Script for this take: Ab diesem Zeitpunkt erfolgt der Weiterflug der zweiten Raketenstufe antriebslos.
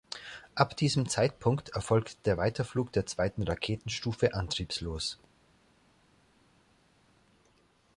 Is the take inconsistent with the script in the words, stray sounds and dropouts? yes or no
no